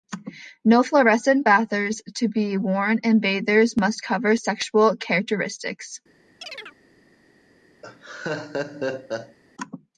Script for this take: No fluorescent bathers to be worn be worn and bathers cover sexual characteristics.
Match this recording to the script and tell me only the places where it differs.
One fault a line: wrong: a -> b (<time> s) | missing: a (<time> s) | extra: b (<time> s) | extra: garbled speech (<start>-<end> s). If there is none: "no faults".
missing: be worn (3.0 s)
extra: must (3.8 s)